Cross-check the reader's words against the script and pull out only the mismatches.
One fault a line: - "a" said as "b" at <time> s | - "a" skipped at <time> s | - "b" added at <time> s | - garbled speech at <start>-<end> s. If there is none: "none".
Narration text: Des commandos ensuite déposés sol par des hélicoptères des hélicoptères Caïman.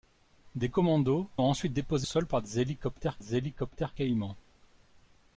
none